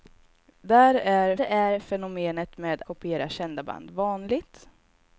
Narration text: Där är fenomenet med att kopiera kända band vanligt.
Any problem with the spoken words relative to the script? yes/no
yes